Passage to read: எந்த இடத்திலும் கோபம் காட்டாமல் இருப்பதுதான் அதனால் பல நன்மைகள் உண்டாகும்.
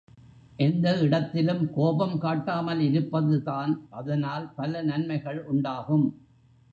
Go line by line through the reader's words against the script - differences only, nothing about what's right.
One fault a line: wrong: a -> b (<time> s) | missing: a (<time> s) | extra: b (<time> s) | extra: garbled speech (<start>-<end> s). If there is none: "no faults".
no faults